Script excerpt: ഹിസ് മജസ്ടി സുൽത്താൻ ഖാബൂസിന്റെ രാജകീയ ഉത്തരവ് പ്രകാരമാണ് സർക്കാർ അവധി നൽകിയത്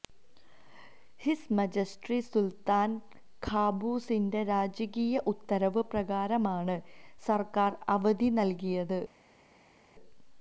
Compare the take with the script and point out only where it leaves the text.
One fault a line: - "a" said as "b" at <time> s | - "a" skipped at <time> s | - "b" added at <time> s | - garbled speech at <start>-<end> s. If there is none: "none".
none